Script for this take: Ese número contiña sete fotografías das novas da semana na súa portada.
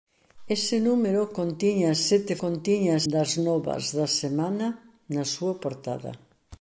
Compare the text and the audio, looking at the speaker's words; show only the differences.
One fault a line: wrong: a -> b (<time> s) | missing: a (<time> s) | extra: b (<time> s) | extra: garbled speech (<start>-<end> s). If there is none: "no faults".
wrong: fotografías -> contiña (2.4 s)